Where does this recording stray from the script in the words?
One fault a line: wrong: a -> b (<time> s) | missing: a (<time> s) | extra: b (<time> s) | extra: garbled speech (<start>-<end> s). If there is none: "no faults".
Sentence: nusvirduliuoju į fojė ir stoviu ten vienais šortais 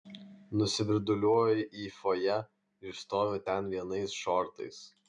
no faults